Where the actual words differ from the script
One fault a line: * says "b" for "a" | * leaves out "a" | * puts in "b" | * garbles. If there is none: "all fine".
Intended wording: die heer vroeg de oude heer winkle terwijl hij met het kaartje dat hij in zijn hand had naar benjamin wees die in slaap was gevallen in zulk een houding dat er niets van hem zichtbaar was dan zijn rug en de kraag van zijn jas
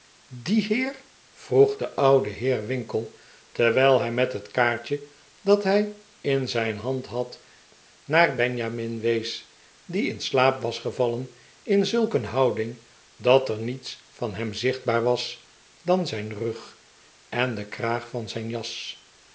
all fine